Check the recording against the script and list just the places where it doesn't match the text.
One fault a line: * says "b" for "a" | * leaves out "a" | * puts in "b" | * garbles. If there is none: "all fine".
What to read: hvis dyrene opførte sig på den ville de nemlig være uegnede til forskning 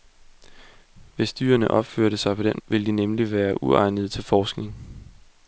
all fine